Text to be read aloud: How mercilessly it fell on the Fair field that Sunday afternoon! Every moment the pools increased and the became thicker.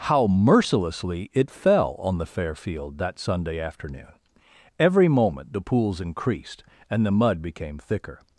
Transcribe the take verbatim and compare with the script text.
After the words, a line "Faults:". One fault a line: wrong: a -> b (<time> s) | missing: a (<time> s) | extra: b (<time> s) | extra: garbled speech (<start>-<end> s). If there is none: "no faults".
How mercilessly it fell on the Fair field that Sunday afternoon! Every moment the pools increased and the mud became thicker.
Faults:
extra: mud (7.1 s)